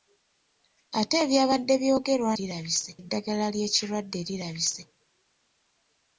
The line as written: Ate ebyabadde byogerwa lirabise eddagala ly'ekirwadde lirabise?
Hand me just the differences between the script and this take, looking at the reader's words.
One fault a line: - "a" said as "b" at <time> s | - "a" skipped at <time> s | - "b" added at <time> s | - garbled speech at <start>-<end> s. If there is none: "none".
none